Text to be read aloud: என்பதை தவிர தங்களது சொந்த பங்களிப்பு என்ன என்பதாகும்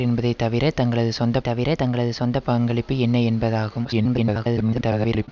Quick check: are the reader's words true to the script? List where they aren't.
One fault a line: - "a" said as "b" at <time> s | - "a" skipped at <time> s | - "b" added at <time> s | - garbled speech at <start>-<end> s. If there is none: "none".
- "தவிர தங்களது சொந்த" added at 1.4 s
- garbled speech at 3.8-5.3 s